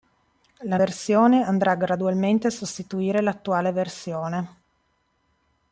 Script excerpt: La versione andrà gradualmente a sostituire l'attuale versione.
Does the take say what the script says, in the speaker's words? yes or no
yes